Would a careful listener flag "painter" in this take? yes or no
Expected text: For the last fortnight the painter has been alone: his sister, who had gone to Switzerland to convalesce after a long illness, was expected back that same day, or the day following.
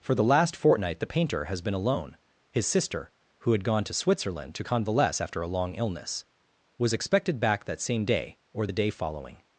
no